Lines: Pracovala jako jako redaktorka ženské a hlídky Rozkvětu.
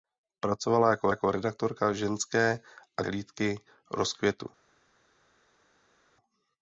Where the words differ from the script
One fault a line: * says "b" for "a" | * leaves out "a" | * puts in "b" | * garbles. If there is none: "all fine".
all fine